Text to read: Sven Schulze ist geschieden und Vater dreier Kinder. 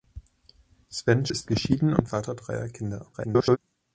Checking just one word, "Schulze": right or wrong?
wrong